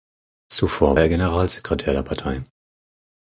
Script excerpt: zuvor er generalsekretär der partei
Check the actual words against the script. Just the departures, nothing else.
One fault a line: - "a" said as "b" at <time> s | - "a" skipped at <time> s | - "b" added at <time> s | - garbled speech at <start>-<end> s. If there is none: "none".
none